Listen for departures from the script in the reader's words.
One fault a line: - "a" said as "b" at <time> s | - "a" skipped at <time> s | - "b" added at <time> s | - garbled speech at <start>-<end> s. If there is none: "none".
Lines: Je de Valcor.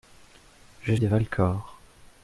none